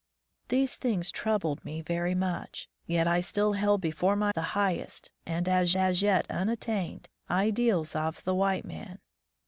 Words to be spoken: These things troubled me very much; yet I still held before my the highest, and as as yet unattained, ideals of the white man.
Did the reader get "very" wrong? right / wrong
right